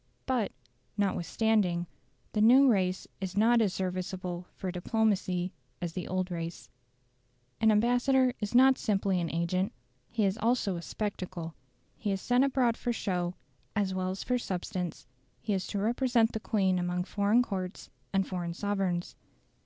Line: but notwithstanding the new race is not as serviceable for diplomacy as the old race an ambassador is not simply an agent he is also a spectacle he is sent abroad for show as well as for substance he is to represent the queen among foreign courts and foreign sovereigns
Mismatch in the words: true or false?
false